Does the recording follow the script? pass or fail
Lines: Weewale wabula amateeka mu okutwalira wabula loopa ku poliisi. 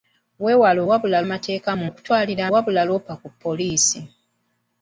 pass